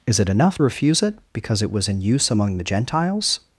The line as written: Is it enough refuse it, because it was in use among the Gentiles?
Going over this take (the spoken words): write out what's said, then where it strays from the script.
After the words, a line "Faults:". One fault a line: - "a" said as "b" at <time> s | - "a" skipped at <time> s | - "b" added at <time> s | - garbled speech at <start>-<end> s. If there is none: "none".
Is it enough refuse it, because it was in use among the Gentiles?
Faults:
none